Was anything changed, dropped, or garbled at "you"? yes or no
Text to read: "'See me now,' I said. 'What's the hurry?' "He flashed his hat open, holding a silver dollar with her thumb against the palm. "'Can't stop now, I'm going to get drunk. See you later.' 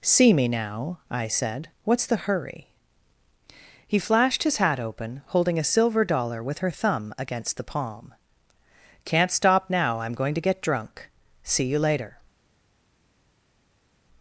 no